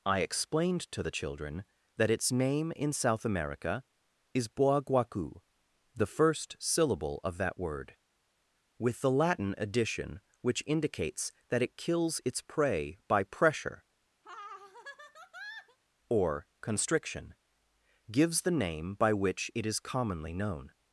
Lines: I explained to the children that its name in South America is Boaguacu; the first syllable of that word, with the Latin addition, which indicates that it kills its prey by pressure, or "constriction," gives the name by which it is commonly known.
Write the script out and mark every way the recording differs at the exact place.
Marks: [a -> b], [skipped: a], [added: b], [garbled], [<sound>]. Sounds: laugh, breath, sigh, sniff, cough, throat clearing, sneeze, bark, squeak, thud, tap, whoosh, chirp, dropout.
I explained to the children that its name in South America is Boaguacu; the first syllable of that word, with the Latin addition, which indicates that it kills its prey by pressure, [laugh] or "constriction," gives the name by which it is commonly known.